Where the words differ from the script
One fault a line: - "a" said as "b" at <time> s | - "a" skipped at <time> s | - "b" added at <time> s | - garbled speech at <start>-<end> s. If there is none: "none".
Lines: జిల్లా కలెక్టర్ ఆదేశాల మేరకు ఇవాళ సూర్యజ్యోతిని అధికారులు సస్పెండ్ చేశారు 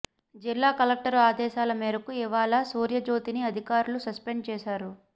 none